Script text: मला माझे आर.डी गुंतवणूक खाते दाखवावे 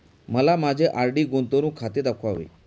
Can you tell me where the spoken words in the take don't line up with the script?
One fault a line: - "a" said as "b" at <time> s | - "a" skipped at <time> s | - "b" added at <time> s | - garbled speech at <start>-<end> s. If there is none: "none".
none